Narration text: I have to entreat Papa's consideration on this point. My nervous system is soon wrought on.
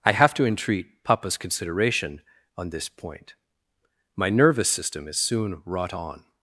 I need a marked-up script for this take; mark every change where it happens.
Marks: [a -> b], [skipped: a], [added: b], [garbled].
I have to entreat Papa's consideration on this point. My nervous system is soon wrought on.